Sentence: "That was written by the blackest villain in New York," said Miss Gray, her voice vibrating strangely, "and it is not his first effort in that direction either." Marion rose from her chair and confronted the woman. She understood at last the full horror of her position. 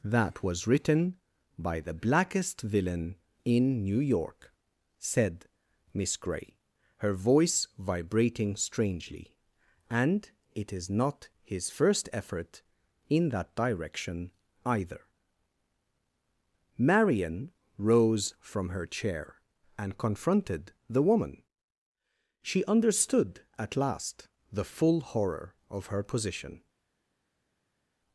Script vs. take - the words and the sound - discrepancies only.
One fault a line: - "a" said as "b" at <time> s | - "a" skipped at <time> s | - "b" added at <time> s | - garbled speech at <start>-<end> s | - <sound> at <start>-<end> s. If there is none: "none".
none